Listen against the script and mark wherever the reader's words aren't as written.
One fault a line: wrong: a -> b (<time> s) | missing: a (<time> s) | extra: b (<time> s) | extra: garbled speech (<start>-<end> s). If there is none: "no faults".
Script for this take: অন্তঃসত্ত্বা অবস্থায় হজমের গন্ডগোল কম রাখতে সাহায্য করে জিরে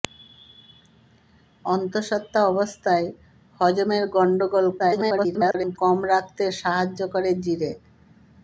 extra: garbled speech (4.8-5.8 s)